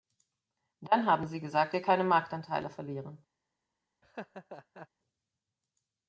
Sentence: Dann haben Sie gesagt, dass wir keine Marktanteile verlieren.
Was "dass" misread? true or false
true